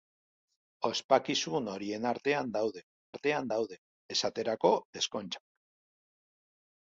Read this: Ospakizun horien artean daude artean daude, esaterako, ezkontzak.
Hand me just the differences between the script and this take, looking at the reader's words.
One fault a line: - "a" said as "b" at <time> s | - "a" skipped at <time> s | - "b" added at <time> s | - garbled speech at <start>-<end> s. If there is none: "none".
none